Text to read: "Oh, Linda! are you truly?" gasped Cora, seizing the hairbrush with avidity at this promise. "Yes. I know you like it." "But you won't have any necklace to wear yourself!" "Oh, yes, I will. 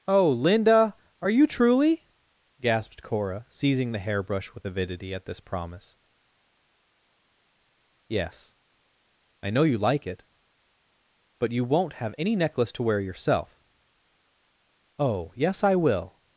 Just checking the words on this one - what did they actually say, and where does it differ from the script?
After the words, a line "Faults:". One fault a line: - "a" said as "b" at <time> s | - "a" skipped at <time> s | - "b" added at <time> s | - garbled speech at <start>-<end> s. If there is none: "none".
"Oh, Linda! are you truly?" gasped Cora, seizing the hairbrush with avidity at this promise. "Yes. I know you like it." "But you won't have any necklace to wear yourself!" "Oh, yes, I will.
Faults:
none